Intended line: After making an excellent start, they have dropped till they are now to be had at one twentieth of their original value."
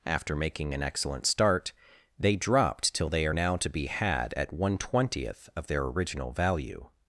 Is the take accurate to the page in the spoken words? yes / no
no